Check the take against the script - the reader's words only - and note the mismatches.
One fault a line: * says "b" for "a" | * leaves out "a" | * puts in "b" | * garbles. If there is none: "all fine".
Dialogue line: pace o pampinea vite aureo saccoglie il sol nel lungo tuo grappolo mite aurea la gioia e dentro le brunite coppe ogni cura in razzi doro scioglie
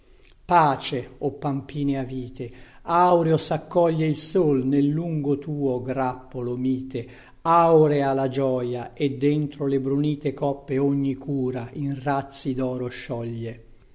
all fine